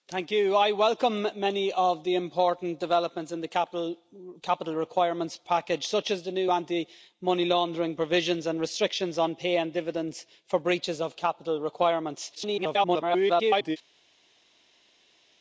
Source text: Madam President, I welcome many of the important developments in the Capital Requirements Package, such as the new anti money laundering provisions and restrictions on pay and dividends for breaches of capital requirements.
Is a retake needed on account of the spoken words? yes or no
yes